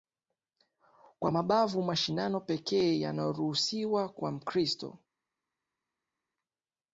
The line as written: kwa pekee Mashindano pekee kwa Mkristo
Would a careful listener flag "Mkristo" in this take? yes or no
no